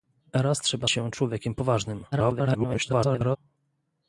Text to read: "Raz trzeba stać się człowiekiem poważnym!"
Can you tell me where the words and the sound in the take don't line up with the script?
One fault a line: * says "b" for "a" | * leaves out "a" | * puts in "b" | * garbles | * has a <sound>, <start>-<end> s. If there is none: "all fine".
* leaves out "stać"
* garbles